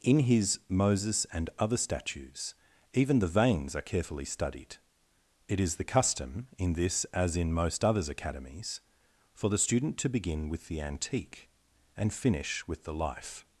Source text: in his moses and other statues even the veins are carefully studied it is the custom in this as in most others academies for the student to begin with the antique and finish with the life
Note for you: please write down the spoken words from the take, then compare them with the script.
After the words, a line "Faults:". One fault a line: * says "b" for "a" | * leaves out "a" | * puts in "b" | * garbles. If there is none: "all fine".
in his moses and other statues even the veins are carefully studied it is the custom in this as in most others academies for the student to begin with the antique and finish with the life
Faults:
all fine